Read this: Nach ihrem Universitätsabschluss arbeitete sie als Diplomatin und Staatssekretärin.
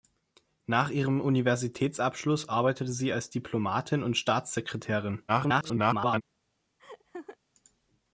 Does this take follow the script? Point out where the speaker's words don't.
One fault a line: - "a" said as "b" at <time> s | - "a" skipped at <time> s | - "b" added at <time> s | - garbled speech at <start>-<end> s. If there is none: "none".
- garbled speech at 5.3-6.2 s